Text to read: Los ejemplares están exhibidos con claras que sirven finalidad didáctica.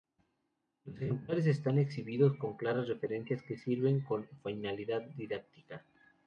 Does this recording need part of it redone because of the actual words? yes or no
yes